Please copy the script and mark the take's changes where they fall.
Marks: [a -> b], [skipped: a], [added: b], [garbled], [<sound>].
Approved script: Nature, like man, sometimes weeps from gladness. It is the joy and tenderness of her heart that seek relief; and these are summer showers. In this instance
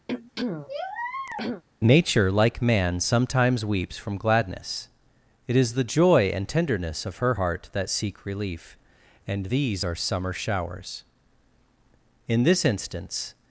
[throat clearing] Nature, like man, sometimes weeps from gladness. It is the joy and tenderness of her heart that seek relief; and these are summer showers. In this instance